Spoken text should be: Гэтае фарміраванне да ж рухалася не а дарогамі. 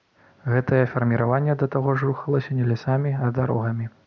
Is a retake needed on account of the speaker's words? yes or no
yes